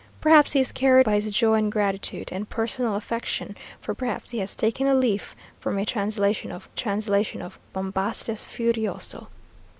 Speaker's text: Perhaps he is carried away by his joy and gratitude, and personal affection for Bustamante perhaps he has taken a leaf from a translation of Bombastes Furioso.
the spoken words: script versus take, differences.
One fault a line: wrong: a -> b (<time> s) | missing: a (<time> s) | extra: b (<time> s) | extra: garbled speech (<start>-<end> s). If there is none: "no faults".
missing: away (1.1 s)
missing: Bustamante (3.9 s)
extra: translation of (6.8 s)